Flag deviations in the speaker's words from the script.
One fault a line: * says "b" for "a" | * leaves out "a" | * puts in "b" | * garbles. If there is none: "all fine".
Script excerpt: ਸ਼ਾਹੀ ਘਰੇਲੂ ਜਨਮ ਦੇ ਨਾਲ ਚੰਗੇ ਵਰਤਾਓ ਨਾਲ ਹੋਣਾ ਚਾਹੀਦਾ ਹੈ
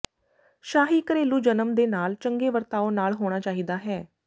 all fine